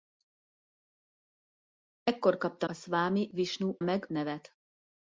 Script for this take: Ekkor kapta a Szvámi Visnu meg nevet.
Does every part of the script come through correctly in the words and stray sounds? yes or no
yes